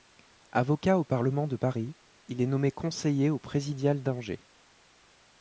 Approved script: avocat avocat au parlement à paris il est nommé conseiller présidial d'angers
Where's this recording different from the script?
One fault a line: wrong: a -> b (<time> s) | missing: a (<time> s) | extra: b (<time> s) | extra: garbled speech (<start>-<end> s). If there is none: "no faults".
missing: avocat (1.0 s)
wrong: à -> de (1.4 s)
extra: au (3.3 s)